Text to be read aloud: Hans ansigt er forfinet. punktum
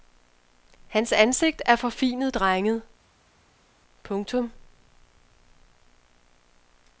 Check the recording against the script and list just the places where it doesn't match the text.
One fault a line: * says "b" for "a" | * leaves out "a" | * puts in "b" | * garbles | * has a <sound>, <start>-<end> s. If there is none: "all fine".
* puts in "drenget"